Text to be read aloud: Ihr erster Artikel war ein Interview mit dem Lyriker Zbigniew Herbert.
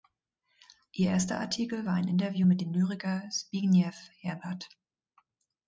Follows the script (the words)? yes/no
yes